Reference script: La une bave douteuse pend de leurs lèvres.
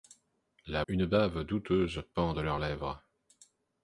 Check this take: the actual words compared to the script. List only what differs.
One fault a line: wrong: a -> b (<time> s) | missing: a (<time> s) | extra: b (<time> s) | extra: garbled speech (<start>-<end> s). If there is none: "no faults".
no faults